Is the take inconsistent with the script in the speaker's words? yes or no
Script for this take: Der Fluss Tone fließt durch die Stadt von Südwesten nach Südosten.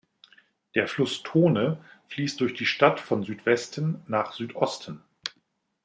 no